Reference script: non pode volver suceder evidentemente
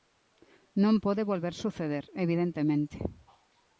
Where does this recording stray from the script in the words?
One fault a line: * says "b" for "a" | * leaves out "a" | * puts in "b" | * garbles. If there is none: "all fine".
all fine